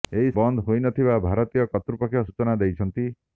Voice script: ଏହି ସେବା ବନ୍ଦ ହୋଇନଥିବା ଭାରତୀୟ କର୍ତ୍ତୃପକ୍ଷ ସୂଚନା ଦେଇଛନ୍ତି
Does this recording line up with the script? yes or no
no